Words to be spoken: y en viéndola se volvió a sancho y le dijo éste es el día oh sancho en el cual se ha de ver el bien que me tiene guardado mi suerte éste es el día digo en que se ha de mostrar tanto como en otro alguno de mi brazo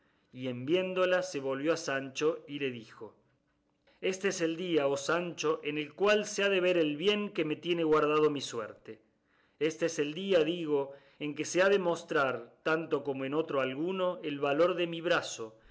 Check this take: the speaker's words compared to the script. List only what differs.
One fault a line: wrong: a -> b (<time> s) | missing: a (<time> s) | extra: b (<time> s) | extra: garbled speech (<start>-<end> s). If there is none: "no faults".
extra: el valor (14.2 s)